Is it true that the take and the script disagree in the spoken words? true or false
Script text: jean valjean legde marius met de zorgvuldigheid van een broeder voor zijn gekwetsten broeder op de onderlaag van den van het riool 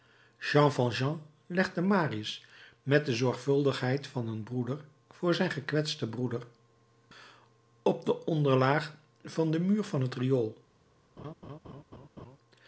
true